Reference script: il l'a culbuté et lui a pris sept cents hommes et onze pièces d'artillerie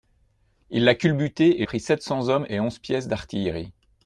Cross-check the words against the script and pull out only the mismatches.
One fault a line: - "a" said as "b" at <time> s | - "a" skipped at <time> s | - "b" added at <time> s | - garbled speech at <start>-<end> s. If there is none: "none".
- "lui a" skipped at 1.7 s